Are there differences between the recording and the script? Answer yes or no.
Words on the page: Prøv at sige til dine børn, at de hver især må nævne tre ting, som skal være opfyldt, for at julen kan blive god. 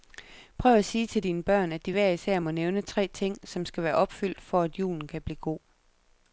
no